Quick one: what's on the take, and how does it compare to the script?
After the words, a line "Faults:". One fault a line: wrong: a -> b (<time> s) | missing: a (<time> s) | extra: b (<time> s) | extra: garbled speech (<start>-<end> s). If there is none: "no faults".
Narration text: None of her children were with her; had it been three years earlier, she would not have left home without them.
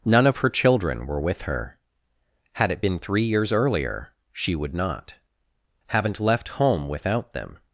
None of her children were with her; had it been three years earlier, she would not haven't left home without them.
Faults:
wrong: have -> haven't (5.9 s)